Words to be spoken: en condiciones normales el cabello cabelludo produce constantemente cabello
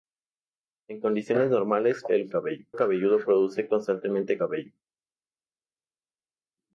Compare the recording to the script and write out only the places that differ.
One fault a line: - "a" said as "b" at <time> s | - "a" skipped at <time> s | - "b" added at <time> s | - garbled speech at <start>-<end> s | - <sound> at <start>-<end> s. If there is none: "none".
none